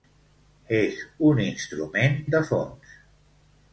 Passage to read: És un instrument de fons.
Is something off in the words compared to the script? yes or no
no